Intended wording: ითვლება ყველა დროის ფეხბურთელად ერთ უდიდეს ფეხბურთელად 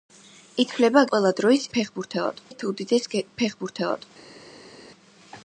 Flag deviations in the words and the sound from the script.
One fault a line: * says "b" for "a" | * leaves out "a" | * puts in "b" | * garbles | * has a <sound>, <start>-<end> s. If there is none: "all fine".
all fine